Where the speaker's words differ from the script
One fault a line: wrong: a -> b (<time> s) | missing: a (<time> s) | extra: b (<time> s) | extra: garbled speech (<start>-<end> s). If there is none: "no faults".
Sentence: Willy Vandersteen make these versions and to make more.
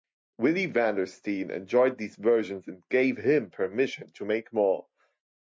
wrong: make -> enjoyed (1.5 s)
extra: gave him permission (2.9 s)